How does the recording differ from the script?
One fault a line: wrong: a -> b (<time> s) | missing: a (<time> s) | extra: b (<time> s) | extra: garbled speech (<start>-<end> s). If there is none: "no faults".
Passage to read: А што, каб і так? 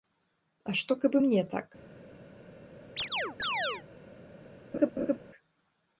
extra: мне (1.2 s)